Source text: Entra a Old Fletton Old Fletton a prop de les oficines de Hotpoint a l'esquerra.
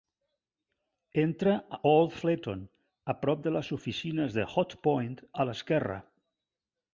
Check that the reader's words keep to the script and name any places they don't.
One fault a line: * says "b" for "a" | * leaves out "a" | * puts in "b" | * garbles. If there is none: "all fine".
* leaves out "Old Fletton"